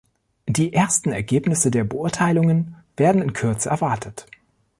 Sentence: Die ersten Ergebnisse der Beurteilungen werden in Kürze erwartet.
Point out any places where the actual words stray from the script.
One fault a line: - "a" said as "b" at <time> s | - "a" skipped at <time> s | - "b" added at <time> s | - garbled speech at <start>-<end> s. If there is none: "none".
none